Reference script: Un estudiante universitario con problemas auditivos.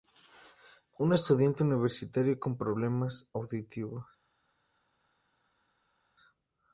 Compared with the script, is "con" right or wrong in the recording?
right